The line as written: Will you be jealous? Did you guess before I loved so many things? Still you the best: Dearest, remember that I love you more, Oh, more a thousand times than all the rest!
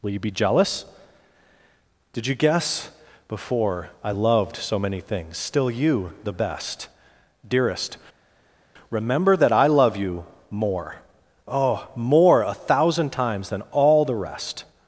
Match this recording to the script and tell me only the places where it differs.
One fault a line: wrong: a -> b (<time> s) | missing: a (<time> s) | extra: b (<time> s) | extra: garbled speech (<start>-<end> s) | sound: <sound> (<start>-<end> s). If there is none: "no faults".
no faults